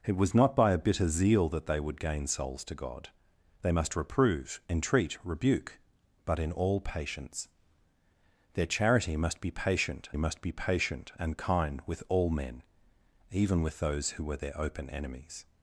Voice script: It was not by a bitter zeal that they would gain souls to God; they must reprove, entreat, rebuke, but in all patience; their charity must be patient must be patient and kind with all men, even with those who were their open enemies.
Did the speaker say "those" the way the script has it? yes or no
yes